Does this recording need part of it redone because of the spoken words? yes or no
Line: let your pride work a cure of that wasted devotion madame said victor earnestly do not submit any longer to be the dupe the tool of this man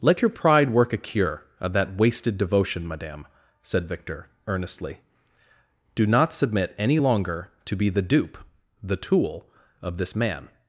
no